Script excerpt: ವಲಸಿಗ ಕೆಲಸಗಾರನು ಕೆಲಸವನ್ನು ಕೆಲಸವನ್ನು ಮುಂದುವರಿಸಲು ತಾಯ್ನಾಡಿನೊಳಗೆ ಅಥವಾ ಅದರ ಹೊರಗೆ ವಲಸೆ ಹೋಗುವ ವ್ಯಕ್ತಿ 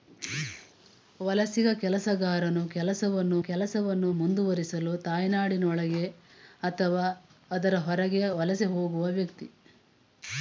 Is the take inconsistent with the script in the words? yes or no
no